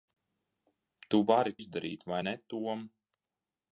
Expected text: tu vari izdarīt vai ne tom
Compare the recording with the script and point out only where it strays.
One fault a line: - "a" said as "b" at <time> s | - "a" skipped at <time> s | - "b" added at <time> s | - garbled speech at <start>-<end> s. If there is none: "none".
none